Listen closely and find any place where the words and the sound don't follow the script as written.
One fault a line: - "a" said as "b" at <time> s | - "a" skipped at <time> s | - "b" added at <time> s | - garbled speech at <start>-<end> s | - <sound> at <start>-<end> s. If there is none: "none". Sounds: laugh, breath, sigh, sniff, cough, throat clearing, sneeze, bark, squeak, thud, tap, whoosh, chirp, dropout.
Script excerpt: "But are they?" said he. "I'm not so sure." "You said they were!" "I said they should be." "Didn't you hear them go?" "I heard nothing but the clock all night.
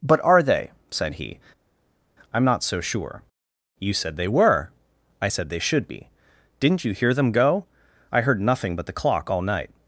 none